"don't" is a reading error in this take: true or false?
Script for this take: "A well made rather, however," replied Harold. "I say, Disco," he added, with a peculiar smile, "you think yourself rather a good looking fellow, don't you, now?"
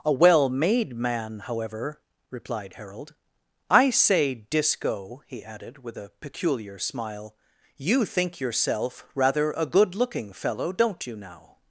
false